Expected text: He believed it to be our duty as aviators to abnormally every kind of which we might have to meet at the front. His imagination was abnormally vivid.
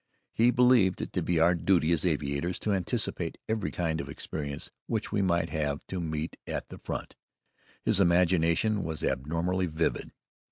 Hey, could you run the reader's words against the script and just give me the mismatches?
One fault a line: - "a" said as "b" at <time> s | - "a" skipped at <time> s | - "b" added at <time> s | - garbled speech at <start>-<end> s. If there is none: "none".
- "abnormally" said as "anticipate" at 2.7 s
- "experience" added at 4.1 s